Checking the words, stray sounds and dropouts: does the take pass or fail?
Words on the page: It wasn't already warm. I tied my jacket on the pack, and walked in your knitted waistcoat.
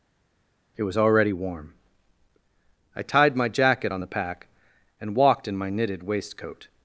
fail